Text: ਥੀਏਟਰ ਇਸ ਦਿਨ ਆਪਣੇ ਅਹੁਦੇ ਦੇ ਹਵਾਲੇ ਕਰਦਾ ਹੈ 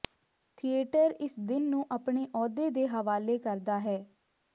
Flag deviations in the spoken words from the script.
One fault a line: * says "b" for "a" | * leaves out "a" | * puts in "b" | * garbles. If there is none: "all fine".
* puts in "ਨੂੰ"